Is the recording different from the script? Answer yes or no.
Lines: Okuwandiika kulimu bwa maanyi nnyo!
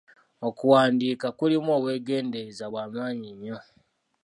yes